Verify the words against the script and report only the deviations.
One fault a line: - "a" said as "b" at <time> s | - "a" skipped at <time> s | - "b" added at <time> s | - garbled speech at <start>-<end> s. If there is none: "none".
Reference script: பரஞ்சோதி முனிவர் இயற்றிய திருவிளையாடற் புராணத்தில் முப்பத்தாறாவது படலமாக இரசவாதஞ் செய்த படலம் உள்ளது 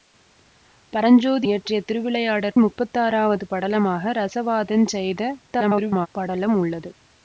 - "முனிவர்" skipped at 1.5 s
- "புராணத்தில்" skipped at 2.6 s
- garbled speech at 5.5-6.1 s